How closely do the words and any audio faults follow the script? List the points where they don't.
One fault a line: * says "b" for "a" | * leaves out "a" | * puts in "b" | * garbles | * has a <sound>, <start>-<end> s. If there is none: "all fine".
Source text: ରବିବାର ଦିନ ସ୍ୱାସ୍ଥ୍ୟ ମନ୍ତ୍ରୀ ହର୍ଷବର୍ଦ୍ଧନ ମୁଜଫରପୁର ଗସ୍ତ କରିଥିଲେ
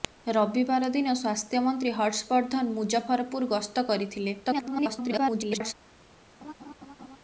* garbles
* has a laugh, 6.4-7.2 s